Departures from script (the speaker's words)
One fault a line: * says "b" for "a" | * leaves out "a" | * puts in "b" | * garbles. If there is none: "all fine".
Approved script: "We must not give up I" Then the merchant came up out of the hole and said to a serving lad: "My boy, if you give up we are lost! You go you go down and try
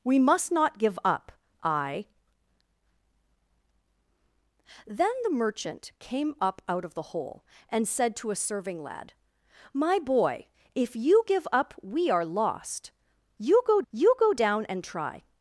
all fine